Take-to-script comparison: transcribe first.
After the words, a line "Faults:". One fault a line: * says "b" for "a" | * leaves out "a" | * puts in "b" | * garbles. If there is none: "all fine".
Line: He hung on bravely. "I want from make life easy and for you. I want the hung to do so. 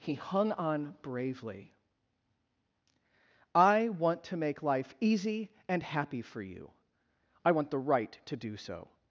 He hung on bravely. "I want to make life easy and happy for you. I want the right to do so.
Faults:
* says "to" for "from"
* puts in "happy"
* says "right" for "hung"